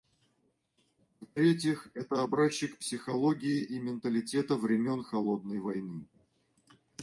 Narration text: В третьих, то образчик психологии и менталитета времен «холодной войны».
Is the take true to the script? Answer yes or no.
no